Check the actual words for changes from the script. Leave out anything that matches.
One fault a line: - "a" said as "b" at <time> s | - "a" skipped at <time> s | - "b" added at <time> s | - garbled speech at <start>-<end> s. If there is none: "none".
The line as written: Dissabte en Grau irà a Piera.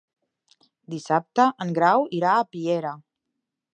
none